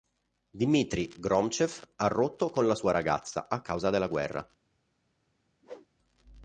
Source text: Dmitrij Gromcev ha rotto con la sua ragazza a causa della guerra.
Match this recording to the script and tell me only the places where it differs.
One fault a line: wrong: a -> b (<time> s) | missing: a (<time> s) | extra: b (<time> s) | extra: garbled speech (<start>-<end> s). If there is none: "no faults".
no faults